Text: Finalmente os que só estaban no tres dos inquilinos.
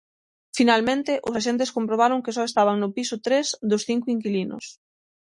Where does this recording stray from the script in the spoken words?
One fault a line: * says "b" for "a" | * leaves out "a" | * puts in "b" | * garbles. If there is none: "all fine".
* puts in "axentes comprobaron"
* puts in "piso"
* puts in "cinco"